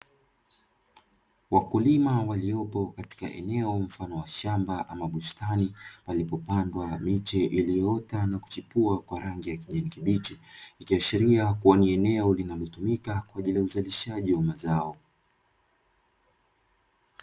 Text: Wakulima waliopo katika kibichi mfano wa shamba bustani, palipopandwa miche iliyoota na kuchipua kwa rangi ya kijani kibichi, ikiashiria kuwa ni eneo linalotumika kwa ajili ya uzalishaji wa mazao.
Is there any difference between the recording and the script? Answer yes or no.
yes